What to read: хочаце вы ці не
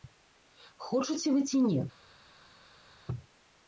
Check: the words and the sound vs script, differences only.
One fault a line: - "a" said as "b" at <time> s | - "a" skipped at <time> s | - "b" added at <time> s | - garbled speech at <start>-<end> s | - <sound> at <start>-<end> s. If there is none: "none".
none